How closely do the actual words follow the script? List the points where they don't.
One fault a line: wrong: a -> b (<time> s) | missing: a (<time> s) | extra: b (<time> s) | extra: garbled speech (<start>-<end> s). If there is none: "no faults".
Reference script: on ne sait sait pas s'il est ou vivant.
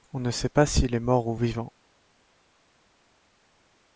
missing: sait (0.5 s)
extra: mort (1.0 s)